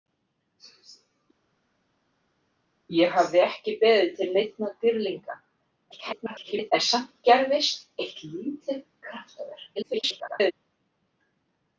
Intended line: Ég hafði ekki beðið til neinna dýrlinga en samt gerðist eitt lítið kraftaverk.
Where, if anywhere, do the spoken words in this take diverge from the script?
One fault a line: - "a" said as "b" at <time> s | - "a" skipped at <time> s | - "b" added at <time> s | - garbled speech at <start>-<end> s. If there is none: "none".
- garbled speech at 5.9-6.7 s
- garbled speech at 9.8-10.5 s